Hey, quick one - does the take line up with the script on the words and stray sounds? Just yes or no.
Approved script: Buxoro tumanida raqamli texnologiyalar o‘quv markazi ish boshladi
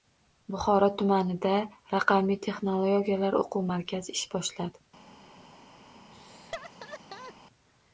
no